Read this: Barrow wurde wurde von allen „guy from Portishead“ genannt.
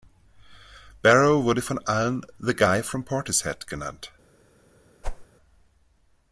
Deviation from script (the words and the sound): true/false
true